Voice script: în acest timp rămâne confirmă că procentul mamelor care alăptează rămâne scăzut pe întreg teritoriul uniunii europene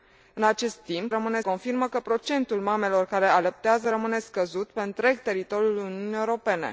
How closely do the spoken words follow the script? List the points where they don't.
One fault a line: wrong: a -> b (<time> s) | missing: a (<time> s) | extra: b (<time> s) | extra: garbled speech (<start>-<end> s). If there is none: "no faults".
no faults